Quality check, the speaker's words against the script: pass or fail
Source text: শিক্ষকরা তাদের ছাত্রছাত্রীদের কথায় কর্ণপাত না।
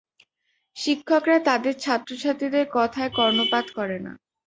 fail